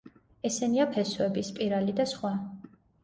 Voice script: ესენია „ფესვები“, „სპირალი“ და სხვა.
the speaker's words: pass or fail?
pass